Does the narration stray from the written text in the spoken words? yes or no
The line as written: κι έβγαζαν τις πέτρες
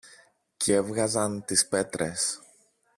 no